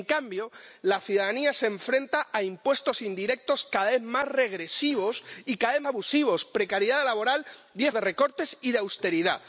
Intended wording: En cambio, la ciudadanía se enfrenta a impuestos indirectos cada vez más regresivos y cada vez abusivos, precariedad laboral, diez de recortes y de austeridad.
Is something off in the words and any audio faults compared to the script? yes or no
no